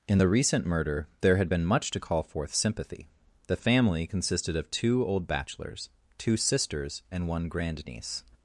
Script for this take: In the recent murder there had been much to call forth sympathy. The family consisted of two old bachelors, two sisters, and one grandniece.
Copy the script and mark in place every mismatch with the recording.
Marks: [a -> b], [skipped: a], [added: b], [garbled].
In the recent murder there had been much to call forth sympathy. The family consisted of two old bachelors, two sisters, and one grandniece.